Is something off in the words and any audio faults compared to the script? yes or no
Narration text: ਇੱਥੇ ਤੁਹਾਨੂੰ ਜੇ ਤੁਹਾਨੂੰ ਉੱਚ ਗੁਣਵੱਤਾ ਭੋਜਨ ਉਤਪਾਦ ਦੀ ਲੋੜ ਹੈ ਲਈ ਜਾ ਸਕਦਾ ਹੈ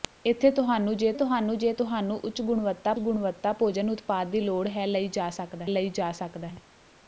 yes